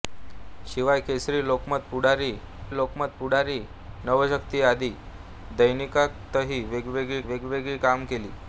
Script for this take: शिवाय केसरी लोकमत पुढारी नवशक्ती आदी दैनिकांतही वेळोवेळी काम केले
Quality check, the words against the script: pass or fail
fail